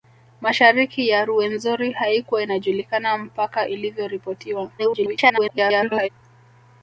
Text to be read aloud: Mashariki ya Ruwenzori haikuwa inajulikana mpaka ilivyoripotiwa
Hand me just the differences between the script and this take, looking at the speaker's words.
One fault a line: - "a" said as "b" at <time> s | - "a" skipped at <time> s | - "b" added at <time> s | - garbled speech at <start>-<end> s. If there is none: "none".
- garbled speech at 4.8-6.1 s